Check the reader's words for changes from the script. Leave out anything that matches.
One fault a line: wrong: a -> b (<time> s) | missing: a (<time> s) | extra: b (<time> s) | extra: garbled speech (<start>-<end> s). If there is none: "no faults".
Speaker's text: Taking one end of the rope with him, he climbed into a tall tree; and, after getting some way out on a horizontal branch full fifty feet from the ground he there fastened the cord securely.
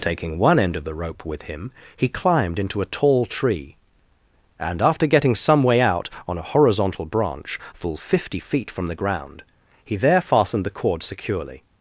no faults